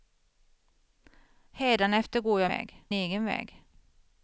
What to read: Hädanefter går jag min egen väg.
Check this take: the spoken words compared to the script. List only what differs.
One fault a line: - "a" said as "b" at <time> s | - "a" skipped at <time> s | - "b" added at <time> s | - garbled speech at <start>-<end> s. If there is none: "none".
- "min" said as "väg" at 2.5 s